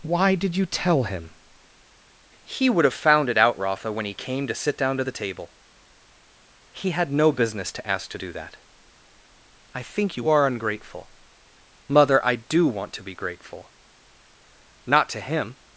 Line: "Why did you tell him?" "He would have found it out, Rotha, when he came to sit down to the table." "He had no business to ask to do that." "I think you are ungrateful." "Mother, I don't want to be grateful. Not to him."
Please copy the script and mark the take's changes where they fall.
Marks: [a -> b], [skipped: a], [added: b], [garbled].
"Why did you tell him?" "He would have found it out, Rotha, when he came to sit down to the table." "He had no business to ask to do that." "I think you are ungrateful." "Mother, I [don't -> do] want to be grateful. Not to him."